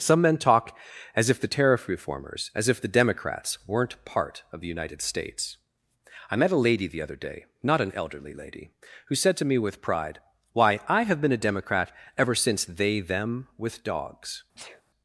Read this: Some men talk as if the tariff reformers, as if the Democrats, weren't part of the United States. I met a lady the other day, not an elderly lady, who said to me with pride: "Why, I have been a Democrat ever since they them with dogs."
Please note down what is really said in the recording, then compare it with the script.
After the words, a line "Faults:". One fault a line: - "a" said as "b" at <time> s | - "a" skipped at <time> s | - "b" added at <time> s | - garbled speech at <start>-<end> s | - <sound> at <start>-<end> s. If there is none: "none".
Some men talk as if the tariff reformers, as if the Democrats, weren't part of the United States. I met a lady the other day, not an elderly lady, who said to me with pride: "Why, I have been a Democrat ever since they them with dogs."
Faults:
- sneeze at 14.6-14.8 s